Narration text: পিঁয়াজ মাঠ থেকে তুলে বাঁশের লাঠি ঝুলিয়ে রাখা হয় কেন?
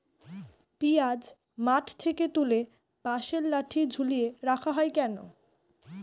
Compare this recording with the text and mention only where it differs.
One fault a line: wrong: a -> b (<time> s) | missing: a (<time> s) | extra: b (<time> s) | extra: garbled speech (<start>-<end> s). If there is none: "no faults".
no faults